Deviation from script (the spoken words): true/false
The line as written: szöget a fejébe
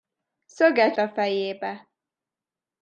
false